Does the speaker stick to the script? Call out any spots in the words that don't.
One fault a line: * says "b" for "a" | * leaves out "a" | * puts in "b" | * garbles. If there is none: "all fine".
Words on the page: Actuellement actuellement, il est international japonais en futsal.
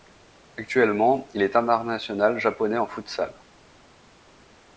* leaves out "actuellement"